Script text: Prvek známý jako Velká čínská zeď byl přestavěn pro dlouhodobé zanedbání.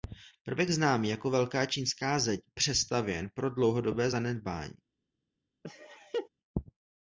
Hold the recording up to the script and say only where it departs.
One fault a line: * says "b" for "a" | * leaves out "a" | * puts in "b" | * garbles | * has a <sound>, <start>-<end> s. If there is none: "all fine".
* leaves out "byl"
* has a laugh, 5.6-6.3 s